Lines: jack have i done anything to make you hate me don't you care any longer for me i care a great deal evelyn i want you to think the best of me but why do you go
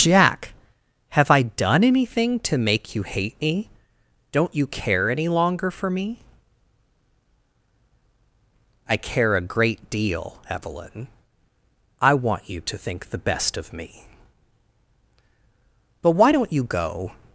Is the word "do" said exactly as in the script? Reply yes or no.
no